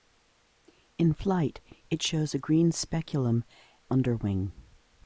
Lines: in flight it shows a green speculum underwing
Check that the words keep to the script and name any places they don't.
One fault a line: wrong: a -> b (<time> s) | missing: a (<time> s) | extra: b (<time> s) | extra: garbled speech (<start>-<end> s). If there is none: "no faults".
no faults